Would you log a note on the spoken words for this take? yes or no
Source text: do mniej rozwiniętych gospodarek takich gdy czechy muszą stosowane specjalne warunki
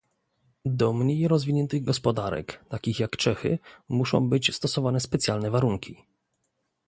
yes